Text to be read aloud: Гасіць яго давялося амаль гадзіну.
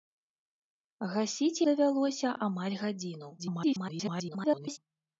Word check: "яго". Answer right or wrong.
wrong